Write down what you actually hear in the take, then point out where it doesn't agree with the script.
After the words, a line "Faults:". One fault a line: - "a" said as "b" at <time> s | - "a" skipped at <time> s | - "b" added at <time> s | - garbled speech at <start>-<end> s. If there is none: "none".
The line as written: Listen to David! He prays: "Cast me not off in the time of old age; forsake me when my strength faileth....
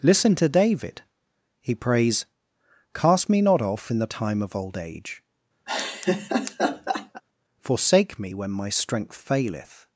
Listen to David! He prays: "Cast me not off in the time of old age; forsake me when my strength faileth....
Faults:
none